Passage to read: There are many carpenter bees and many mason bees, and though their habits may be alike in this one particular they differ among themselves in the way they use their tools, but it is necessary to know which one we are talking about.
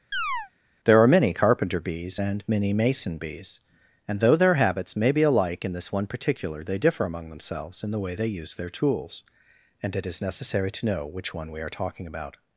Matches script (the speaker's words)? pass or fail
fail